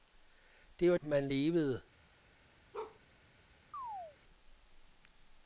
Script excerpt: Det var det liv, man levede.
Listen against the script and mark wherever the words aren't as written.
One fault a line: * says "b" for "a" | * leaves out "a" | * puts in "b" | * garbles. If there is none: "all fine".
* leaves out "det liv"